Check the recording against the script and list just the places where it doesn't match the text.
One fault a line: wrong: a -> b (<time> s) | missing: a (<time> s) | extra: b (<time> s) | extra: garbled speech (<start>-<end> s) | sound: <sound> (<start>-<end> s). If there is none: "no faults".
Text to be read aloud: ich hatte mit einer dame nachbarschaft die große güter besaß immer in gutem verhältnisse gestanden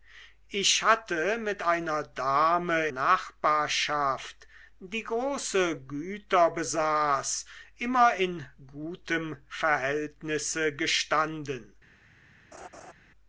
sound: laugh (12.5-12.9 s)